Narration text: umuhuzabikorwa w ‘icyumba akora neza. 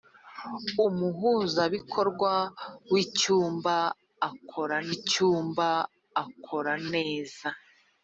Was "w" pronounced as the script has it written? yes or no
yes